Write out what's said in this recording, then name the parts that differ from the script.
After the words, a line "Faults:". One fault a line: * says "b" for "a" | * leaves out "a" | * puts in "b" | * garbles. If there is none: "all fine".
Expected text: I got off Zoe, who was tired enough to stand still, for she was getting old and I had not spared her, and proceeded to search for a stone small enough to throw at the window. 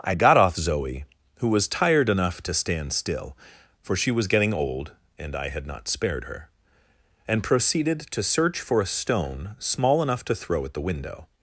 I got off Zoe, who was tired enough to stand still, for she was getting old and I had not spared her, and proceeded to search for a stone small enough to throw at the window.
Faults:
all fine